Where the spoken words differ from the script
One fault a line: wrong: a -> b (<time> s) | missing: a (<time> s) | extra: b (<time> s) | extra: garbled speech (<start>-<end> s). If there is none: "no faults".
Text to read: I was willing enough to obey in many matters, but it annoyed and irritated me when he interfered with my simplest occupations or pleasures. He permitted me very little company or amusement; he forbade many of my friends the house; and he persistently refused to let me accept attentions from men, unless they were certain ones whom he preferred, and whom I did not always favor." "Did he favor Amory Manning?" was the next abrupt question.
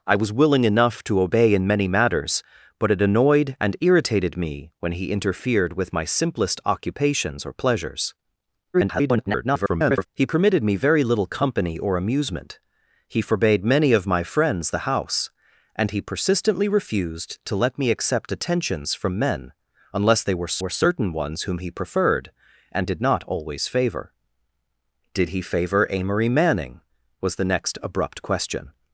extra: garbled speech (8.7-10.1 s)
extra: were (20.6 s)
missing: whom I (22.9 s)